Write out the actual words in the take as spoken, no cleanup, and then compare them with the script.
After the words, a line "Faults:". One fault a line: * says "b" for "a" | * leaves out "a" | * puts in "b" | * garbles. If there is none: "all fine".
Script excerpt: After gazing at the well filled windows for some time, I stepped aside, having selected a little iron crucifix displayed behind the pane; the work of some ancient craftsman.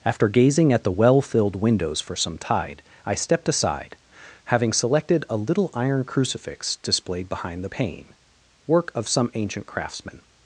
After gazing at the well filled windows for some tide, I stepped aside, having selected a little iron crucifix displayed behind the pane; work of some ancient craftsman.
Faults:
* says "tide" for "time"
* leaves out "the"